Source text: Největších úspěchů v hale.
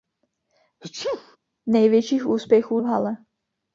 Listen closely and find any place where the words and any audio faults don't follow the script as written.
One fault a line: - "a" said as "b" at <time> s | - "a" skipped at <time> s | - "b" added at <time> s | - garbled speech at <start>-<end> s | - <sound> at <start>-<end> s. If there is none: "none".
- sneeze at 0.8-1.4 s